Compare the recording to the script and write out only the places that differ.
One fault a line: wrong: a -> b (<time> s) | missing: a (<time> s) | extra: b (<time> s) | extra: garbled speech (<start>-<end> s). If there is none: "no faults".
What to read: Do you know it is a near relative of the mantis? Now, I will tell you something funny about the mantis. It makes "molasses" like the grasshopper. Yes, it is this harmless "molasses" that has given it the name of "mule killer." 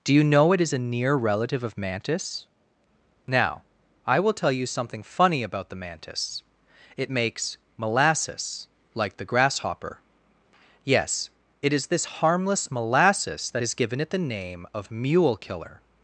missing: the (1.8 s)